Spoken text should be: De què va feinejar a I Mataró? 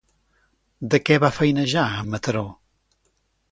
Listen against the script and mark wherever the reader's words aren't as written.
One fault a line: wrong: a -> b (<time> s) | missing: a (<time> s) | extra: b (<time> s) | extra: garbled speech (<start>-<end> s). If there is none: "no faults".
no faults